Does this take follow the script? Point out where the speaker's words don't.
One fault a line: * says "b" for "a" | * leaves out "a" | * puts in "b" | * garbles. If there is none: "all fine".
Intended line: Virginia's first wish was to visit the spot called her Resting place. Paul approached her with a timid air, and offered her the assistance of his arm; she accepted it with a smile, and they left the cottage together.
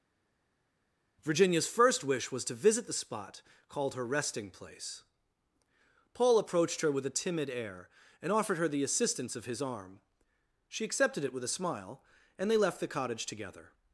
all fine